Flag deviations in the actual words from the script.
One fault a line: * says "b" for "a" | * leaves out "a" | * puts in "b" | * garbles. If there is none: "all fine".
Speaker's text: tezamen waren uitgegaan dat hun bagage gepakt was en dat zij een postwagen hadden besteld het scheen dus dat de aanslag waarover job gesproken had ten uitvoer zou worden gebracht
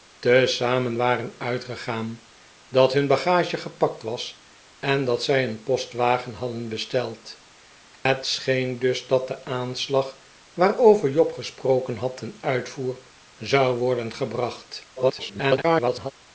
* garbles